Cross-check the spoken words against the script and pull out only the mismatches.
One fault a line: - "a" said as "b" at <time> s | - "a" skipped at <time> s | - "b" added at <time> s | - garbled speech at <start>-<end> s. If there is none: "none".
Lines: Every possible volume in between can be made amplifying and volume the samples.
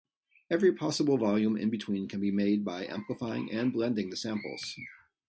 - "by" added at 2.6 s
- "volume" said as "blending" at 3.7 s